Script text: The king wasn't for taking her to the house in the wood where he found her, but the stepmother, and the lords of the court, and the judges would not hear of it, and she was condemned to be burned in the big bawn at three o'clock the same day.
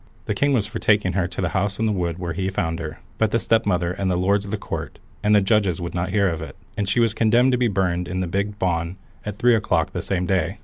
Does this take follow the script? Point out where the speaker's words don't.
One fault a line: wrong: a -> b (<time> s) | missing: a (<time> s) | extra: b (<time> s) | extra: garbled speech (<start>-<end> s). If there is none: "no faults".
wrong: wasn't -> was (0.5 s)